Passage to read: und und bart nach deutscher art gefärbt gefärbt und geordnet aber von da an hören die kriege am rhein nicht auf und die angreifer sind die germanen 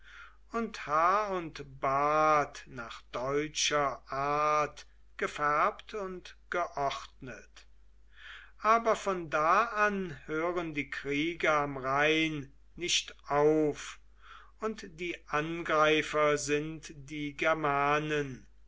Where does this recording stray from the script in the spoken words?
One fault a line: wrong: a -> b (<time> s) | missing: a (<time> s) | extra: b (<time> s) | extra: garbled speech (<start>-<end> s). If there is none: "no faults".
extra: haar (0.9 s)
missing: gefärbt (5.9 s)